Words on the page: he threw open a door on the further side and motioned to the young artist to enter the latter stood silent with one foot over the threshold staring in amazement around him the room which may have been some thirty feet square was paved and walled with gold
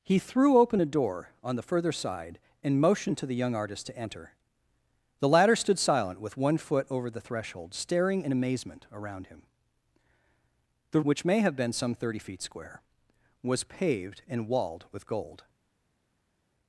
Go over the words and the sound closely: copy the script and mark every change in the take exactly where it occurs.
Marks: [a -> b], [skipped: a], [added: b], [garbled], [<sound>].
he threw open a door on the further side and motioned to the young artist to enter the latter stood silent with one foot over the threshold staring in amazement around him the [skipped: room] which may have been some thirty feet square was paved and walled with gold